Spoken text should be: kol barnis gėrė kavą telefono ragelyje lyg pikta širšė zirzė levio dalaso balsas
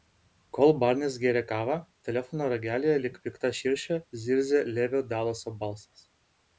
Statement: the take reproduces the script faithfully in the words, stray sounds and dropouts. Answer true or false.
true